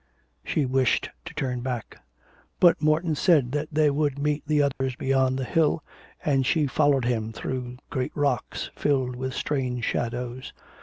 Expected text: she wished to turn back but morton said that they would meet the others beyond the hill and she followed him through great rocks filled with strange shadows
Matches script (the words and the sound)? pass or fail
fail